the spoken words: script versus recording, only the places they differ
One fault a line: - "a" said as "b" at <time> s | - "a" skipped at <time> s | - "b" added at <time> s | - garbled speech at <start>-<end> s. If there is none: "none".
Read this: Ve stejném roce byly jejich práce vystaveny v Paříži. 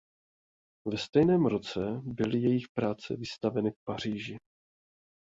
none